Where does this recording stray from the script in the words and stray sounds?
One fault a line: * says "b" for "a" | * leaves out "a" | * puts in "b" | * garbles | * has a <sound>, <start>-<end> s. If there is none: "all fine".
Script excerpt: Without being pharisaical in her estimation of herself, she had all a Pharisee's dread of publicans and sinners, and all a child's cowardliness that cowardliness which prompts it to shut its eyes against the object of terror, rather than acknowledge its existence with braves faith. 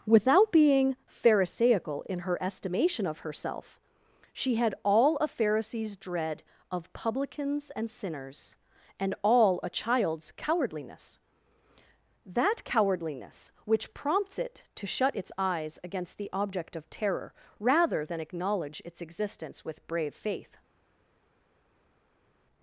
* says "brave" for "braves"